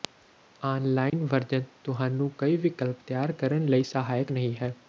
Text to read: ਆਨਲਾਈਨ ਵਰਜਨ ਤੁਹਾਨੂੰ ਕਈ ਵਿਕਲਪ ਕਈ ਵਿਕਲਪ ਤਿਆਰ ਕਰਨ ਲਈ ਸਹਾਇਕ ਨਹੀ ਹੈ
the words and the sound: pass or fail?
fail